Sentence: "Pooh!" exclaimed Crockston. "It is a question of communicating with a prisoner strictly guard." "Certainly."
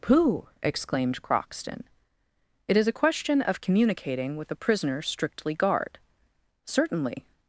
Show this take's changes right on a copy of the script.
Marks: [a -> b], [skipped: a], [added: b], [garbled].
"Pooh!" exclaimed Crockston. "It is a question of communicating with a prisoner strictly guard." "Certainly."